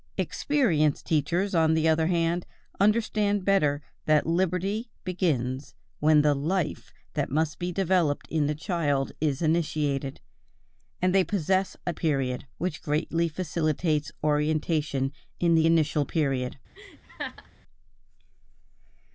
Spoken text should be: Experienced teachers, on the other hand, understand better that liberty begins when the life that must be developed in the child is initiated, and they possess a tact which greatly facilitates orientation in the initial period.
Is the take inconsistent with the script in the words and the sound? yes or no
yes